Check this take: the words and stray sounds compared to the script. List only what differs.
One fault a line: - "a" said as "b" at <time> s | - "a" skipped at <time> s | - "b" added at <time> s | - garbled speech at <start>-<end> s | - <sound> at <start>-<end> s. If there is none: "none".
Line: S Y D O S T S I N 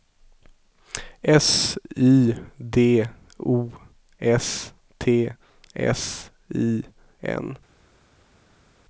none